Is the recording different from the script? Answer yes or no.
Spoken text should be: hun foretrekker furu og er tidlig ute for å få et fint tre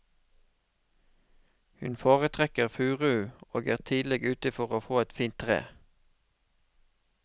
no